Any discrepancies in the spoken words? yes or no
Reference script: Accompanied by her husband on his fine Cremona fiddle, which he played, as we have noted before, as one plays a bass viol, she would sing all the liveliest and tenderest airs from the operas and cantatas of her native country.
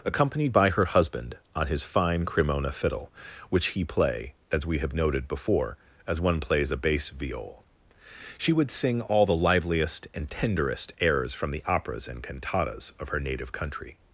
yes